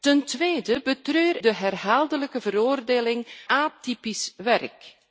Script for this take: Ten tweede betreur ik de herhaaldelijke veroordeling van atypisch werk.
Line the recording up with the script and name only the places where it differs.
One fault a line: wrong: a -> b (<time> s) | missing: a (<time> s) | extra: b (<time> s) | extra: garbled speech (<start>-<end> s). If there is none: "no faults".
missing: ik (1.4 s)
missing: van (3.3 s)